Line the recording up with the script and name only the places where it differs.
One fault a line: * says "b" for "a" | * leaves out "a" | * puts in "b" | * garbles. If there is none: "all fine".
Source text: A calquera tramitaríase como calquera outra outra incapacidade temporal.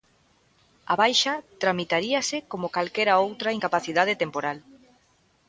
* says "baixa" for "calquera"
* leaves out "outra"